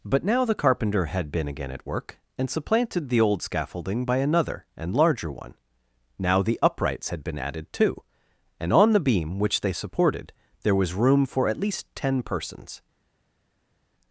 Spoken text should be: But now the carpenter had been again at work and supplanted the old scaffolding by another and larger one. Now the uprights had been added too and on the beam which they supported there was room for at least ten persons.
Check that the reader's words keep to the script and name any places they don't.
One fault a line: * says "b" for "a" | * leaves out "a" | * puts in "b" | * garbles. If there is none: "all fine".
all fine